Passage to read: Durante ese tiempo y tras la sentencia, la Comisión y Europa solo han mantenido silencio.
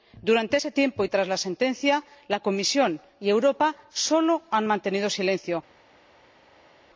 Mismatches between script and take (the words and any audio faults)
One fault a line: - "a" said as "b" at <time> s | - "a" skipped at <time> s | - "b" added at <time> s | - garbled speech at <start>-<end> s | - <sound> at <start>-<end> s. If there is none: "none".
none